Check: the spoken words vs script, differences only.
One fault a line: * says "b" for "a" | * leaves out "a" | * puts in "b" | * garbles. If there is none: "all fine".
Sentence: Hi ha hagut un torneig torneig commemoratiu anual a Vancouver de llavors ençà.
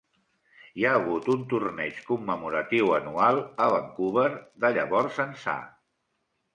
* leaves out "torneig"